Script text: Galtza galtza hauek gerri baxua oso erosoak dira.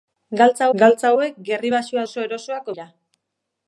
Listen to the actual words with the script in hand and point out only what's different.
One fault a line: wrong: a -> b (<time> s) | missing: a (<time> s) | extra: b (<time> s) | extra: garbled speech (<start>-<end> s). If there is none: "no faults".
no faults